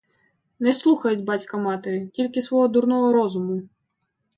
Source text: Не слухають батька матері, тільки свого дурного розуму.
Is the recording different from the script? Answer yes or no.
no